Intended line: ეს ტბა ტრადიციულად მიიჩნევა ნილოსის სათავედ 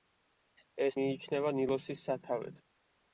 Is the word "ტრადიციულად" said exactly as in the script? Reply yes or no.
no